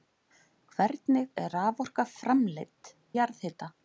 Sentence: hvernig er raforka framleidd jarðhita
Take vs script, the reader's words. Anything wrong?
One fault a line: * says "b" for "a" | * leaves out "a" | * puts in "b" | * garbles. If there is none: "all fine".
all fine